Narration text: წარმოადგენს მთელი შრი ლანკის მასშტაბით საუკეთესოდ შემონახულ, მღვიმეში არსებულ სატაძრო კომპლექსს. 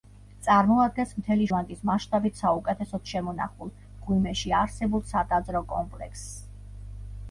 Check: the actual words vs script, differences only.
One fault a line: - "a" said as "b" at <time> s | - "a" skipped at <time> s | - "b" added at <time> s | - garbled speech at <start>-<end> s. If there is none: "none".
- "შრი" skipped at 1.4 s